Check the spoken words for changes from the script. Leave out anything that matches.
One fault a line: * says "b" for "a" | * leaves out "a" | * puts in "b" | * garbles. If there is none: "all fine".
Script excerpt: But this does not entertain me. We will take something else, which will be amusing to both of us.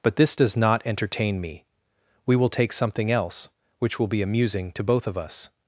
all fine